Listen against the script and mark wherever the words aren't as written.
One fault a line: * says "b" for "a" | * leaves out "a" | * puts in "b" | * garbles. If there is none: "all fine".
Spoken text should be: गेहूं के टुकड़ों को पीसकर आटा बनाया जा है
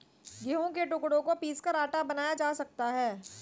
* puts in "सकता"